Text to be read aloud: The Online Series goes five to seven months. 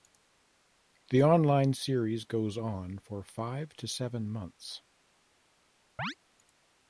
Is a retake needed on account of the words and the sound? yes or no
yes